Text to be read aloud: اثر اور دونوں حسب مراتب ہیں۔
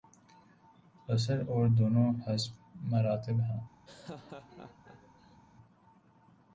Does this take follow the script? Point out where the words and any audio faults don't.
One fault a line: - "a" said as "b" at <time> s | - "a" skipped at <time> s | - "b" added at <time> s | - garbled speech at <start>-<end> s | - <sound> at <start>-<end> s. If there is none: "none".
- laugh at 3.8-5.4 s